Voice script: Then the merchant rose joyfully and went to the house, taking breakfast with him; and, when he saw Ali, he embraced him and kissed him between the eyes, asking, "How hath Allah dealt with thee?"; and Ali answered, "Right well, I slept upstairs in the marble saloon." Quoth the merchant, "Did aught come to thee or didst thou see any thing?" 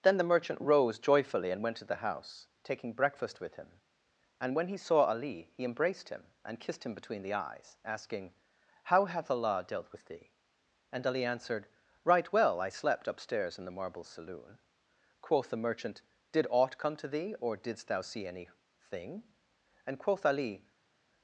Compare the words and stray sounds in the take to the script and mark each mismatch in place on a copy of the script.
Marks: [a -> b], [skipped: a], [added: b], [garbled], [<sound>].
Then the merchant rose joyfully and went to the house, taking breakfast with him; and, when he saw Ali, he embraced him and kissed him between the eyes, asking, "How hath Allah dealt with thee?"; and Ali answered, "Right well, I slept upstairs in the marble saloon." Quoth the merchant, "Did aught come to thee or didst thou see any thing?" [added: and quoth Ali]